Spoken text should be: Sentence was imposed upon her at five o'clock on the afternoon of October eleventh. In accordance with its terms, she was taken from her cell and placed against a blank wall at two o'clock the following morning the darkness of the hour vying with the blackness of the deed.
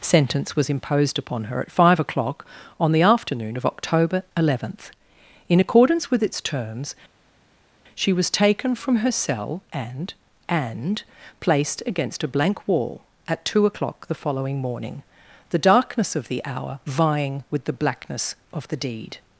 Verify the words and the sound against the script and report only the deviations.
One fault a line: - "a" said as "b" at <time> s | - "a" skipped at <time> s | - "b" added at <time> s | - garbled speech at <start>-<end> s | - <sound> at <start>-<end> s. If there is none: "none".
- "and" added at 10.5 s